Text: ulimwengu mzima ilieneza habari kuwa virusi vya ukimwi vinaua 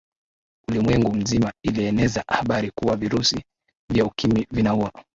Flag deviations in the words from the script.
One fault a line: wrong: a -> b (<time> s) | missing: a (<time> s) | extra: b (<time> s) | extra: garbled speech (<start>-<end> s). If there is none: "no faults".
no faults